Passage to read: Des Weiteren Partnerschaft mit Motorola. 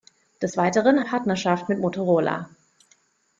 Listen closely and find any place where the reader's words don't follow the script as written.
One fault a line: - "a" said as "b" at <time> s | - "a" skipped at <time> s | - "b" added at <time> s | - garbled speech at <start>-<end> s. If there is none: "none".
none